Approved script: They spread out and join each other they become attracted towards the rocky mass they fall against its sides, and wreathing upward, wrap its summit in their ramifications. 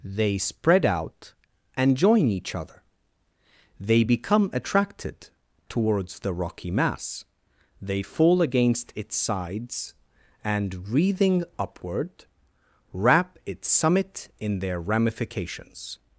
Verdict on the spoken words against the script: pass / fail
pass